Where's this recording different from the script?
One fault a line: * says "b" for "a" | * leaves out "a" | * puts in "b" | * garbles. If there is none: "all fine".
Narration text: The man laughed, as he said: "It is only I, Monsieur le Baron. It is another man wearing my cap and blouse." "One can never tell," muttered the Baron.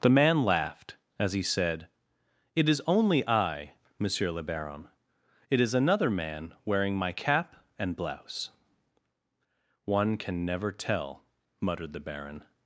all fine